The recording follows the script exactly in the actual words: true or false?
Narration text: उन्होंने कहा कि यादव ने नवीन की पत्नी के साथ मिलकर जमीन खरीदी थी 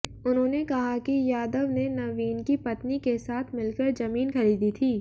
true